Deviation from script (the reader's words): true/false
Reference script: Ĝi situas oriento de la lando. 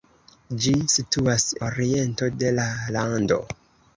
false